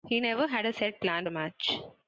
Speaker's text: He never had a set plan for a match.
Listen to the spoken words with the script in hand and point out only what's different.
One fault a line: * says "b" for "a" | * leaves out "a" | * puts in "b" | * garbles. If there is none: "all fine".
* leaves out "for"